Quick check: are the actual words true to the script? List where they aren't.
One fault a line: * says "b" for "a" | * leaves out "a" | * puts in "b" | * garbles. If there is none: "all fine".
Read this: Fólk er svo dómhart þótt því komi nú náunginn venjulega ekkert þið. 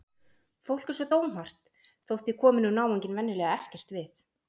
* says "við" for "þið"